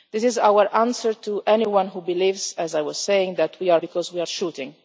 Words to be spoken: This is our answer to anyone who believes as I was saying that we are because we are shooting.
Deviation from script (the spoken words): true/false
false